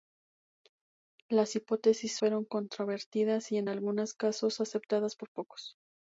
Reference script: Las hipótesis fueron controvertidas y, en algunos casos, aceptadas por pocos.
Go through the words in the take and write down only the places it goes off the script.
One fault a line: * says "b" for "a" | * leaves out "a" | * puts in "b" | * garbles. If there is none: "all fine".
all fine